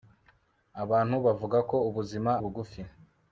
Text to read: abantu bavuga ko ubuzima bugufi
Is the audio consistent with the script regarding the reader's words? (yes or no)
yes